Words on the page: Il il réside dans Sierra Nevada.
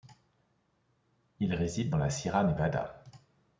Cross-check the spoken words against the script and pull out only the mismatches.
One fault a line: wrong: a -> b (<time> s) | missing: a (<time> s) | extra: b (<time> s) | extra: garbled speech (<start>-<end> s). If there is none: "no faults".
missing: il (1.5 s)
extra: la (2.0 s)